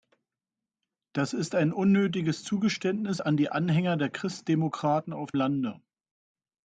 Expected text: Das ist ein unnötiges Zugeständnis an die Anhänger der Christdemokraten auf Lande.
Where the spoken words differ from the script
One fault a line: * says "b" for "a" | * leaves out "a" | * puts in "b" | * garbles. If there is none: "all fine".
all fine